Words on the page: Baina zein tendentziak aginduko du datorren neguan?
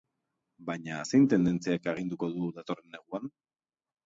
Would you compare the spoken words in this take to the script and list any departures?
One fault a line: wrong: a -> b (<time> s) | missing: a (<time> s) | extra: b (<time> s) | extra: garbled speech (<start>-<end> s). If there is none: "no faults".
no faults